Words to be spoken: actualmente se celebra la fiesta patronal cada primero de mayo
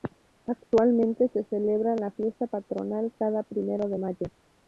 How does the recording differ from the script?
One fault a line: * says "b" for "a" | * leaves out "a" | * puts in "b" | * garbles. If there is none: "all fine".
all fine